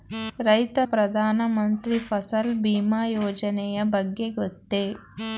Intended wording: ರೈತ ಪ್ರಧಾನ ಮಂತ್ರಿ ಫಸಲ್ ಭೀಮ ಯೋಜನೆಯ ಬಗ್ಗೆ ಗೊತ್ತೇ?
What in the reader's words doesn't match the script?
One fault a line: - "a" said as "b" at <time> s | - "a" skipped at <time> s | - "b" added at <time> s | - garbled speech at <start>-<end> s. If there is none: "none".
none